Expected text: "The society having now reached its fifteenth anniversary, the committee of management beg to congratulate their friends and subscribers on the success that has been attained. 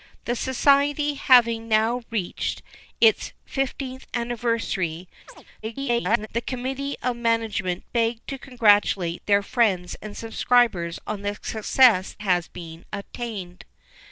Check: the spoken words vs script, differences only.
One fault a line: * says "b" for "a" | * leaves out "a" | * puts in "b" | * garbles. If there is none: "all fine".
* garbles
* leaves out "that"